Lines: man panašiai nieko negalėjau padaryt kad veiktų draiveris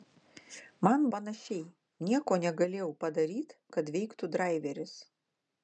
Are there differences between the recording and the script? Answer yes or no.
no